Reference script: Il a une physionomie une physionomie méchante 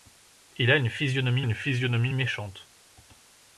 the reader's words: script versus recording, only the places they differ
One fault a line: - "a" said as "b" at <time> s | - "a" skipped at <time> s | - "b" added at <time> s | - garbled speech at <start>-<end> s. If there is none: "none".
none